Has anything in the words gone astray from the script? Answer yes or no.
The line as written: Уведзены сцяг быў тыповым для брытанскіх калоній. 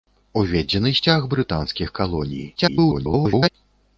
yes